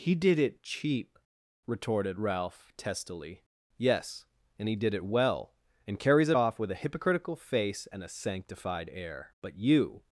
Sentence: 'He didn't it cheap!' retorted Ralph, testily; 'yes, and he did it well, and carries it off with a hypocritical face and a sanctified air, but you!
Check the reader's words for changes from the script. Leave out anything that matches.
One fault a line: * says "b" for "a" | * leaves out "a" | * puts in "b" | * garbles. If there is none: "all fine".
* says "did" for "didn't"